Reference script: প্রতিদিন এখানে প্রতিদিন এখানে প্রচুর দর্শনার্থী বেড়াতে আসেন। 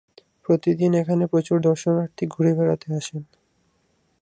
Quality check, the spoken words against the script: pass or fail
fail